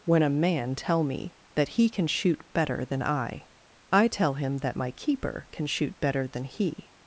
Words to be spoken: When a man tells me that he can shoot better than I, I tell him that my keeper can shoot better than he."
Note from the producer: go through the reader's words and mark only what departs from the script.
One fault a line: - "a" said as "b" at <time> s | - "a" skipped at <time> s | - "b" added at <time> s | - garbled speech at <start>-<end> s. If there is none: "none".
- "tells" said as "tell" at 0.8 s